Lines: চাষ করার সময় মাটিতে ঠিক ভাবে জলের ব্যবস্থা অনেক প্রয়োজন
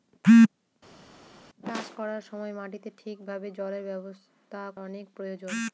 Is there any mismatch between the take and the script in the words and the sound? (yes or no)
no